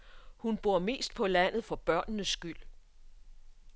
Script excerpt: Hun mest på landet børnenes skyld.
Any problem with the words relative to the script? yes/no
yes